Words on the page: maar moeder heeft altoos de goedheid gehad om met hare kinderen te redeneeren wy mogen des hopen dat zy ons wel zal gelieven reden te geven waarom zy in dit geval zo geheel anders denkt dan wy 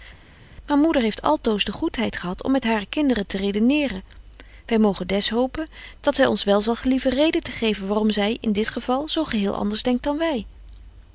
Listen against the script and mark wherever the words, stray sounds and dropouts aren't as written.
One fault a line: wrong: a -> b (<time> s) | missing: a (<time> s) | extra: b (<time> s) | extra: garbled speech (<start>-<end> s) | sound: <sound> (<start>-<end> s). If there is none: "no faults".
no faults